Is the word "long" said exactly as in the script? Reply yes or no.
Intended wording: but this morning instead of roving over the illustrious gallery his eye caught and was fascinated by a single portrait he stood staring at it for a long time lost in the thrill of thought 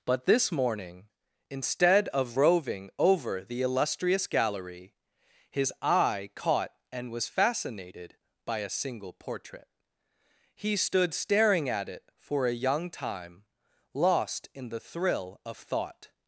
no